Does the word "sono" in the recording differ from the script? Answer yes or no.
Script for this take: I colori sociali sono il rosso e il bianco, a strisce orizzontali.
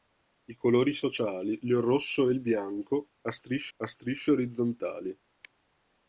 yes